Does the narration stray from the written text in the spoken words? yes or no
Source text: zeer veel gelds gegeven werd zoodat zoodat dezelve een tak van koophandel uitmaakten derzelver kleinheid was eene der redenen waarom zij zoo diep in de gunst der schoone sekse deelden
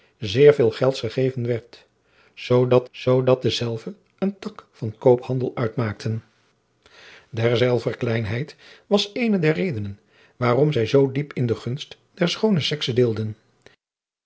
no